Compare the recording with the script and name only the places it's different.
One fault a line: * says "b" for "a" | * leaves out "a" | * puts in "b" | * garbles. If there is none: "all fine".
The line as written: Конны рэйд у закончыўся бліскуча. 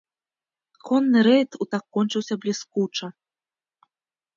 all fine